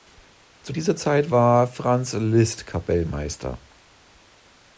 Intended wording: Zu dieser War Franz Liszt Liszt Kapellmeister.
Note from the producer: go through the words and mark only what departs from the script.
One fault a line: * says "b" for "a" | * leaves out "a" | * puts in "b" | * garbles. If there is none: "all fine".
* puts in "Zeit"
* leaves out "Liszt"